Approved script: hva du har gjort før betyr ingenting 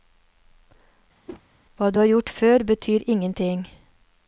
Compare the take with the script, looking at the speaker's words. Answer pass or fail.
pass